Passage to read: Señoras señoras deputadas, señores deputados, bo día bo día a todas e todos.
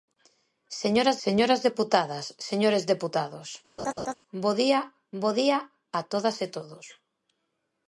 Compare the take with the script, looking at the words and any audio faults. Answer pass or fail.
fail